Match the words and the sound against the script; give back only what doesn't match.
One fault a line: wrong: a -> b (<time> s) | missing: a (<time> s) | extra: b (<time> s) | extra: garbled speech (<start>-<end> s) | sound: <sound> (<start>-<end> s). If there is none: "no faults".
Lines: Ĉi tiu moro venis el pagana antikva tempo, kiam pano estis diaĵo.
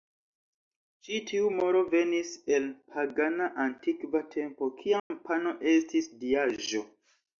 sound: dropout (5.0-5.1 s)